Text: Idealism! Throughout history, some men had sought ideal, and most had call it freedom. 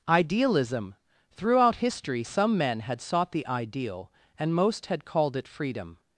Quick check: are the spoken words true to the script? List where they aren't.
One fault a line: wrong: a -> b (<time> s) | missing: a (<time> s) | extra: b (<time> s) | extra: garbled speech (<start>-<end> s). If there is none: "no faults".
extra: the (3.3 s)
wrong: call -> called (5.0 s)